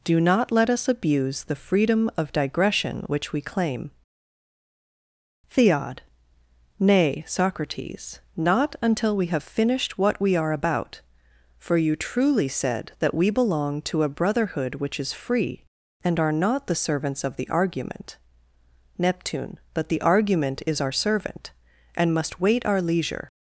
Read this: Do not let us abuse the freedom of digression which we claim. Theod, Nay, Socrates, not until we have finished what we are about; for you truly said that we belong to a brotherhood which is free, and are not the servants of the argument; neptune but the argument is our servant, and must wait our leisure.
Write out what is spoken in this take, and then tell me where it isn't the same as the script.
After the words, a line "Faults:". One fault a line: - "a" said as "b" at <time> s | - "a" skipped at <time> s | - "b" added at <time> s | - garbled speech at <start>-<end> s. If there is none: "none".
Do not let us abuse the freedom of digression which we claim. Theod, Nay, Socrates, not until we have finished what we are about; for you truly said that we belong to a brotherhood which is free, and are not the servants of the argument; neptune but the argument is our servant, and must wait our leisure.
Faults:
none